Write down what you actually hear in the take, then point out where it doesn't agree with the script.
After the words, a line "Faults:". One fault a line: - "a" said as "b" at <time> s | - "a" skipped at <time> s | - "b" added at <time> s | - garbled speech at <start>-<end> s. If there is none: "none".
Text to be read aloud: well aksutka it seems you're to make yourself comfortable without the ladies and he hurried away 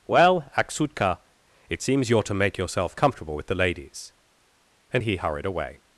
well aksutka it seems you're to make yourself comfortable with the ladies and he hurried away
Faults:
- "without" said as "with" at 3.4 s